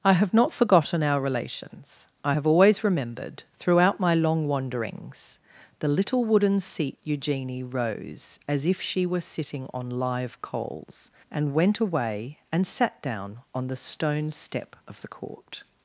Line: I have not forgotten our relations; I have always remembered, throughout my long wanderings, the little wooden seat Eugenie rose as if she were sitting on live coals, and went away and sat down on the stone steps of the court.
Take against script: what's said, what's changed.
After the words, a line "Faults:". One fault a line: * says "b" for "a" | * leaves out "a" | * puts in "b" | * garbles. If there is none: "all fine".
I have not forgotten our relations; I have always remembered, throughout my long wanderings, the little wooden seat Eugenie rose as if she were sitting on live coals, and went away and sat down on the stone step of the court.
Faults:
* says "step" for "steps"